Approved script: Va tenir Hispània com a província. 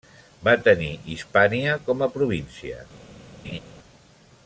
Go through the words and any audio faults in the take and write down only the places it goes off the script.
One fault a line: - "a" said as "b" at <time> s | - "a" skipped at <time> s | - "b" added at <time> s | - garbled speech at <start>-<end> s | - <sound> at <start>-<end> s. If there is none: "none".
- laugh at 3.4-3.6 s